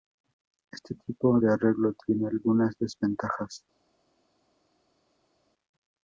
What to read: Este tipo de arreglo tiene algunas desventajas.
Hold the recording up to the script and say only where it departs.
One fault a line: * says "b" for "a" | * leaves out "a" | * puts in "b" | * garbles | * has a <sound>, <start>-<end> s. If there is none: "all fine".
all fine